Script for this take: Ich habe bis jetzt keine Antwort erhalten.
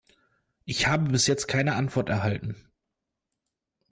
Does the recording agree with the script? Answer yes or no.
yes